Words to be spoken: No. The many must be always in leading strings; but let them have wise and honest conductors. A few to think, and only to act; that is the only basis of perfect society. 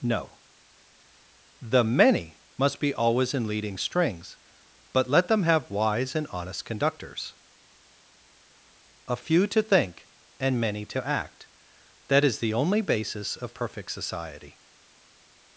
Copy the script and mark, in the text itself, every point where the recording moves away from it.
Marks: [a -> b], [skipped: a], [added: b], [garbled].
No. The many must be always in leading strings; but let them have wise and honest conductors. A few to think, and [only -> many] to act; that is the only basis of perfect society.